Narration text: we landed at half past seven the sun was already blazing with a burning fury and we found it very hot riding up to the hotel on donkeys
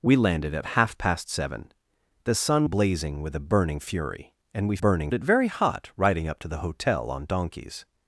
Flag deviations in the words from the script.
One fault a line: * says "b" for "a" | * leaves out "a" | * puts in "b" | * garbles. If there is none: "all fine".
* leaves out "was already"
* says "burning" for "found"